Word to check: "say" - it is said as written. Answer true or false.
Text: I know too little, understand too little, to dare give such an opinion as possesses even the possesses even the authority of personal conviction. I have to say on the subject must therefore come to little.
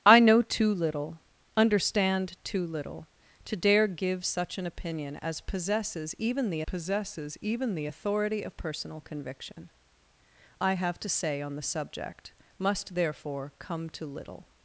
true